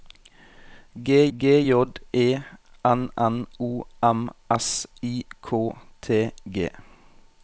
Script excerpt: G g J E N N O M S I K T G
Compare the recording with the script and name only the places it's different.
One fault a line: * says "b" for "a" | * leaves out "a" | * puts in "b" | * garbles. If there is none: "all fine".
all fine